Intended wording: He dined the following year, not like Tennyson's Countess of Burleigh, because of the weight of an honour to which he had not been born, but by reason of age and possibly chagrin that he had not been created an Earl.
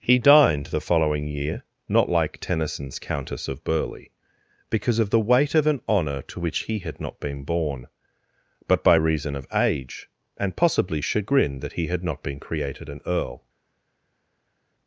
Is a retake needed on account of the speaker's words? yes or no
no